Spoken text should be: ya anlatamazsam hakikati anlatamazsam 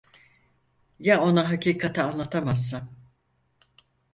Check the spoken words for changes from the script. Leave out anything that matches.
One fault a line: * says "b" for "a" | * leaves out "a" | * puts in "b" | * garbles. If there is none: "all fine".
* says "ona" for "anlatamazsam"